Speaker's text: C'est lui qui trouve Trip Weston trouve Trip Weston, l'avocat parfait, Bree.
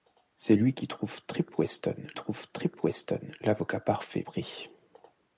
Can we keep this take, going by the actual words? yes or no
yes